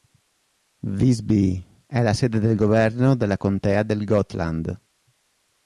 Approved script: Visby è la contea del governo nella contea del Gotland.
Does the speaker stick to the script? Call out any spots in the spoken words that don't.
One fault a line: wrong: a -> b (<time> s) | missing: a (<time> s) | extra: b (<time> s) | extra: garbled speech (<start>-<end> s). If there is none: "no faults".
wrong: contea -> sede (2.1 s)
wrong: nella -> della (3.2 s)